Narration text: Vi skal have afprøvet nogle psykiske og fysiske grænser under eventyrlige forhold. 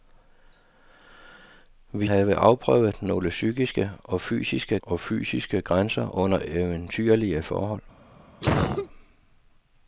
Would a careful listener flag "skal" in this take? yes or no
yes